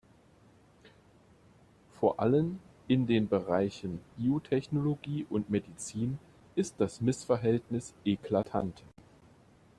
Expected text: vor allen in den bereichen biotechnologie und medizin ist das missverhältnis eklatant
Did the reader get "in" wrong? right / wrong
right